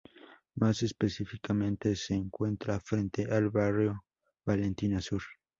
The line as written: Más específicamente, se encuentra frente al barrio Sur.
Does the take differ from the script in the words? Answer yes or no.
yes